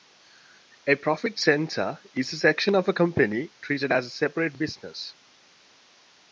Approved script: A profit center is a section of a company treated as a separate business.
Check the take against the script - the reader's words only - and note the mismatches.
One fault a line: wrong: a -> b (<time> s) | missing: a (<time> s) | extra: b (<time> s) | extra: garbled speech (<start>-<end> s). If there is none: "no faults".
no faults